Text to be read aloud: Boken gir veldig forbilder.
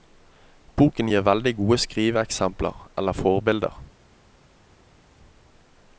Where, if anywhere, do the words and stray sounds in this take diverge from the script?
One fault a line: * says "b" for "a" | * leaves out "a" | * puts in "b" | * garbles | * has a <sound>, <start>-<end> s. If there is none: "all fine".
* puts in "gode skriveeksempler eller"